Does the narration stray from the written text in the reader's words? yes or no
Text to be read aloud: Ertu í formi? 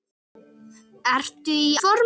no